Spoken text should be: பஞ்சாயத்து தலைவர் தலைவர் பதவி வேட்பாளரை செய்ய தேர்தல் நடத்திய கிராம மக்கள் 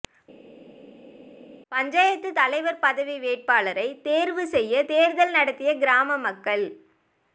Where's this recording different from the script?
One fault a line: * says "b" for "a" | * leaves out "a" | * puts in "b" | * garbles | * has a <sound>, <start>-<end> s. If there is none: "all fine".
* leaves out "தலைவர்"
* puts in "தேர்வு"